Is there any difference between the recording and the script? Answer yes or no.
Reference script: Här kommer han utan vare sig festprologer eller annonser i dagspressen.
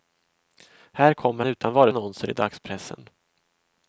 yes